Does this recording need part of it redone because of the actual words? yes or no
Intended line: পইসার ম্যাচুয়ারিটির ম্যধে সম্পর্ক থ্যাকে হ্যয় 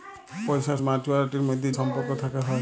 no